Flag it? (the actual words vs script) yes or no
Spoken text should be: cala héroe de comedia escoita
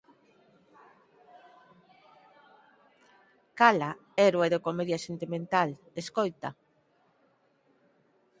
yes